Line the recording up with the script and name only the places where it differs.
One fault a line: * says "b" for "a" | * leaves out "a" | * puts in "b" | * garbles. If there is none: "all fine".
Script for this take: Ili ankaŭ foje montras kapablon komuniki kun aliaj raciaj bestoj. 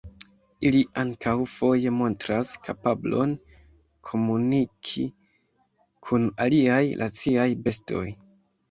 all fine